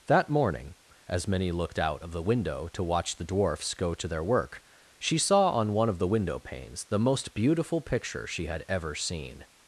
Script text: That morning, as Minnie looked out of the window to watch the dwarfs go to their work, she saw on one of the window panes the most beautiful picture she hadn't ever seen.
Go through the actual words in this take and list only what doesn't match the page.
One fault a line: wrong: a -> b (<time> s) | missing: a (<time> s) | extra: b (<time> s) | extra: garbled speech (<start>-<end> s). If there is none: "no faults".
wrong: hadn't -> had (8.5 s)